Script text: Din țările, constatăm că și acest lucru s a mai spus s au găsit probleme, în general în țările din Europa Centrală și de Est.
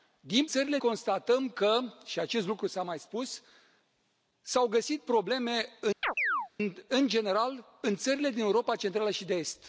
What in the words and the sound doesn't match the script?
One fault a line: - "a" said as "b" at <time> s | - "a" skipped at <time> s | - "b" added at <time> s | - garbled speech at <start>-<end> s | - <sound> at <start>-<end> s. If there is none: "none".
- chirp at 6.0-6.5 s